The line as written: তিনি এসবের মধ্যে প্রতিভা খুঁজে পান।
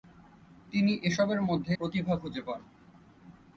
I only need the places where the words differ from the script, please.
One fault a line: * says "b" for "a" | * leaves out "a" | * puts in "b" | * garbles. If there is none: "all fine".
all fine